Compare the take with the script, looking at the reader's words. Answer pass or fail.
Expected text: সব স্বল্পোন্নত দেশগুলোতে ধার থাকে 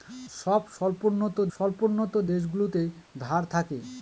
fail